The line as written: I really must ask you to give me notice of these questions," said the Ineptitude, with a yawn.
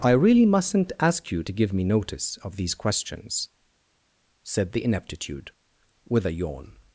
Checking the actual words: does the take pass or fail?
fail